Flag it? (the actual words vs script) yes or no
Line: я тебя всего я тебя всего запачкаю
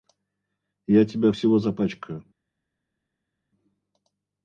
yes